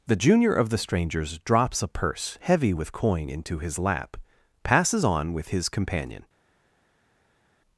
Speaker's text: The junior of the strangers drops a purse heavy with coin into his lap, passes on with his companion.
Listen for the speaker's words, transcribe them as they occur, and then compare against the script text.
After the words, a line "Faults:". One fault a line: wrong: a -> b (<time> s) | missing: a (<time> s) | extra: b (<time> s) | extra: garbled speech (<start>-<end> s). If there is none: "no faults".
The junior of the strangers drops a purse heavy with coin into his lap, passes on with his companion.
Faults:
no faults